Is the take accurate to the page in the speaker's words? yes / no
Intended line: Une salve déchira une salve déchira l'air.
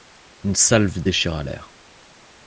no